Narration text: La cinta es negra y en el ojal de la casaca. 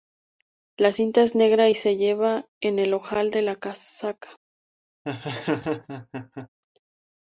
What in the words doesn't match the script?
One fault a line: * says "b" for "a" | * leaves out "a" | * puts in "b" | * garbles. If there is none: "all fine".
* puts in "se lleva"